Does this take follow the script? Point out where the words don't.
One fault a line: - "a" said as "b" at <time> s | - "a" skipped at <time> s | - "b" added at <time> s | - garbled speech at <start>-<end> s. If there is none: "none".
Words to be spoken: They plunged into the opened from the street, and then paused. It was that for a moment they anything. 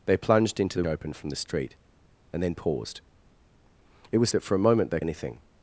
none